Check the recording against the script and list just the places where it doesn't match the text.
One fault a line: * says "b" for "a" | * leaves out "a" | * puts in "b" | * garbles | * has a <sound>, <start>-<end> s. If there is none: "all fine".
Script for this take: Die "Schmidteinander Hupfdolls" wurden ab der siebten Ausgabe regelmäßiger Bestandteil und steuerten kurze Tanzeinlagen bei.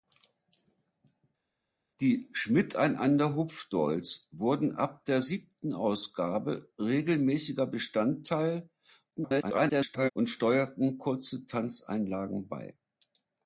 * garbles